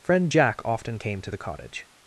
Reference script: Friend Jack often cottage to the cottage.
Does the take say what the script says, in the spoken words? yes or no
no